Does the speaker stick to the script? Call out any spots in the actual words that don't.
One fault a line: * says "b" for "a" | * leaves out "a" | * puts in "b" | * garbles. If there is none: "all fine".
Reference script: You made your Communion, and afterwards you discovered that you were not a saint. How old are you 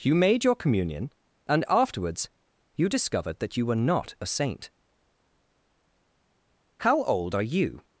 all fine